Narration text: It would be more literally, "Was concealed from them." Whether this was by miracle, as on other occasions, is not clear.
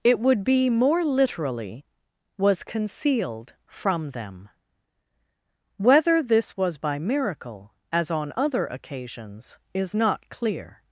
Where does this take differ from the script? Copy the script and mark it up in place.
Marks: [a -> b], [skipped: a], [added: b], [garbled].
It would be more literally, "Was concealed from them." Whether this was by miracle, as on other occasions, is not clear.